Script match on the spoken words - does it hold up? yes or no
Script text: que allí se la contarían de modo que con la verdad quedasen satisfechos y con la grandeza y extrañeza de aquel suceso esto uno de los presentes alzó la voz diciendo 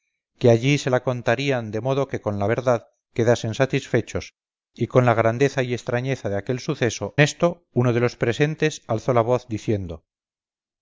yes